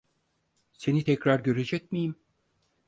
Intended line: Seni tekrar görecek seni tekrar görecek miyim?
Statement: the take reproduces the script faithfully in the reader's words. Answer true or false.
false